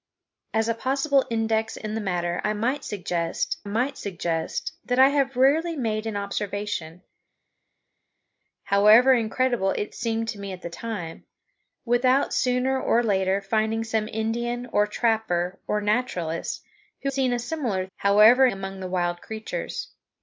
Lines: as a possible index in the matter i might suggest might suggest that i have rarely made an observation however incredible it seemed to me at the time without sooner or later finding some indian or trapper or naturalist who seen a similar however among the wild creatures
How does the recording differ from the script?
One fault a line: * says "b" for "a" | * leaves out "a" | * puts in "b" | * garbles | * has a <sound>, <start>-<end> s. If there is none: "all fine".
all fine